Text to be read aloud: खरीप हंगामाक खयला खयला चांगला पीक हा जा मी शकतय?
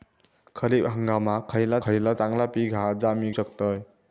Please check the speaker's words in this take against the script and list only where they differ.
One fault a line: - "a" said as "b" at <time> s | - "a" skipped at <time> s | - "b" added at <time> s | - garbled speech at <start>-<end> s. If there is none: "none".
none